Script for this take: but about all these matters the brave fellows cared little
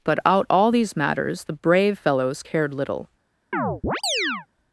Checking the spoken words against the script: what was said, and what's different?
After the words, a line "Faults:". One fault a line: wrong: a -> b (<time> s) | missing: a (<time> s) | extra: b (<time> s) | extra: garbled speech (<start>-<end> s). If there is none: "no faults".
but out all these matters the brave fellows cared little
Faults:
wrong: about -> out (0.2 s)